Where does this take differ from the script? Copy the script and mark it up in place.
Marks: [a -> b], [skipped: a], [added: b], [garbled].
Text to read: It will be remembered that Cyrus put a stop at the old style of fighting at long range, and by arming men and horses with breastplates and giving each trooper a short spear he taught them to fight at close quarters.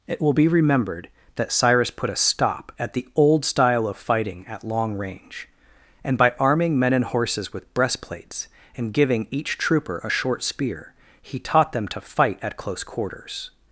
It will be remembered that Cyrus put a stop at the old style of fighting at long range, and by arming men and horses with breastplates and giving each trooper a short spear he taught them to fight at close quarters.